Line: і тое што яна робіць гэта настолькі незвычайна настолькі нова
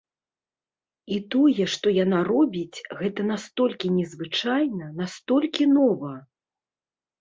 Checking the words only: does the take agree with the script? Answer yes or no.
yes